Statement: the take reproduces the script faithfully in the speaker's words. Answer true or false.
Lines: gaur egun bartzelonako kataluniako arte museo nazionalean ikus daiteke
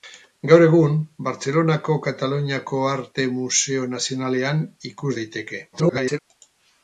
false